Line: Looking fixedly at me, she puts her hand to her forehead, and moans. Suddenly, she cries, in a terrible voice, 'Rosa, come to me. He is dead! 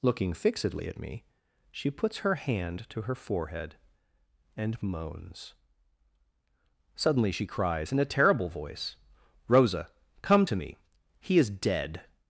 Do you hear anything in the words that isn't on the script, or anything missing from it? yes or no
no